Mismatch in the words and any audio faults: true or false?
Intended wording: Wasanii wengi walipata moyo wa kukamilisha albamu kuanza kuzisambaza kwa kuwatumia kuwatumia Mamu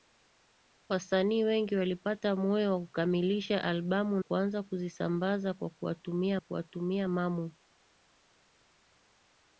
false